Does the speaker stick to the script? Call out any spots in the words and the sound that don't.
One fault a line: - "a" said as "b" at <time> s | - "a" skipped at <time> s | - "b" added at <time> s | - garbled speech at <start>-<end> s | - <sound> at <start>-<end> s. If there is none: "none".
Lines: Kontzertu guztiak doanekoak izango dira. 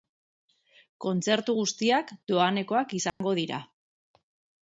- dropout at 3.1-3.2 s